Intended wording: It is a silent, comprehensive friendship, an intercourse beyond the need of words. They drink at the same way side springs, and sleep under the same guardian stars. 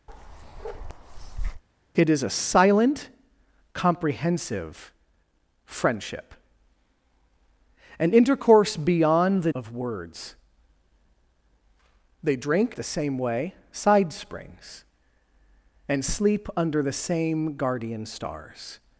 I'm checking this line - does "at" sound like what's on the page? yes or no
no